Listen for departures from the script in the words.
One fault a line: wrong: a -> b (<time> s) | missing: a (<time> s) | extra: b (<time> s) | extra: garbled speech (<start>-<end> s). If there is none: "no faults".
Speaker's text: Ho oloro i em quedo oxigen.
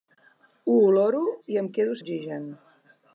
no faults